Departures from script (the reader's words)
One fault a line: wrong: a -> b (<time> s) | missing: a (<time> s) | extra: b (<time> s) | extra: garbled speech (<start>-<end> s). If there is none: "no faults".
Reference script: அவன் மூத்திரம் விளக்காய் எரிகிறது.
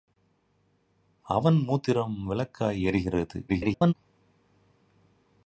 extra: garbled speech (3.5-3.9 s)